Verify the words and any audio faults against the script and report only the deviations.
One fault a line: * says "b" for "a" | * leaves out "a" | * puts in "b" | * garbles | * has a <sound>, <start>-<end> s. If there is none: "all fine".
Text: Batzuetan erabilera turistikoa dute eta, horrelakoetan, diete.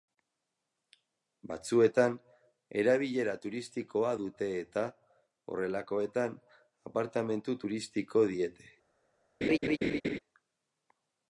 * puts in "apartamentu turistiko"
* has a laugh, 9.4-10.2 s